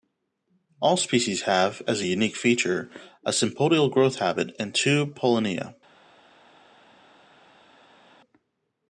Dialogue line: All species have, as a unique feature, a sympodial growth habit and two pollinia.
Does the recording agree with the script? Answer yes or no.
yes